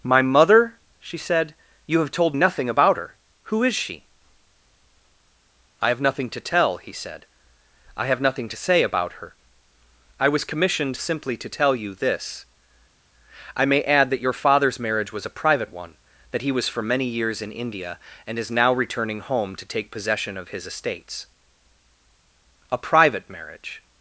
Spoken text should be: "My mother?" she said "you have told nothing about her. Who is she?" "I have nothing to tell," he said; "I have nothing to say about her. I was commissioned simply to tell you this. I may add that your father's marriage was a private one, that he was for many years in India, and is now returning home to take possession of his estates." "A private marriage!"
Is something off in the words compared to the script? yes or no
no